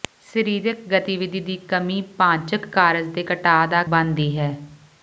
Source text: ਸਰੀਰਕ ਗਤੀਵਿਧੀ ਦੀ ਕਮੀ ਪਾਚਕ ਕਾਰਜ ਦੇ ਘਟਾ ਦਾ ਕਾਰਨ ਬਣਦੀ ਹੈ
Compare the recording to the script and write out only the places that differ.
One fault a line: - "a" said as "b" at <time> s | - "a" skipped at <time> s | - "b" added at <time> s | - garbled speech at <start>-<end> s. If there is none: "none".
- "ਕਾਰਨ" skipped at 3.8 s